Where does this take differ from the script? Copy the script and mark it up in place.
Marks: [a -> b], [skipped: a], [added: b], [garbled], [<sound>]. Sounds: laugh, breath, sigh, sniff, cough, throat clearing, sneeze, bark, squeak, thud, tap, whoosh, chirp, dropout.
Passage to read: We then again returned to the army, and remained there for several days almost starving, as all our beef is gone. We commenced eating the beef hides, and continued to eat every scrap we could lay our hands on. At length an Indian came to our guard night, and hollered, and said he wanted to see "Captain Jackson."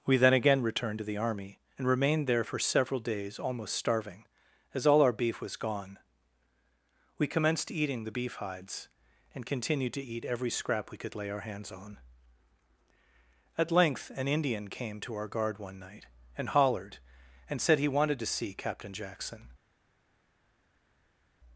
We then again returned to the army, and remained there for several days almost starving, as all our beef [is -> was] gone. We commenced eating the beef hides, and continued to eat every scrap we could lay our hands on. At length an Indian came to our guard [added: one] night, and hollered, and said he wanted to see "Captain Jackson."